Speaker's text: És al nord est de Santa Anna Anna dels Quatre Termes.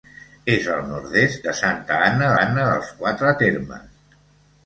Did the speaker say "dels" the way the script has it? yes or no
yes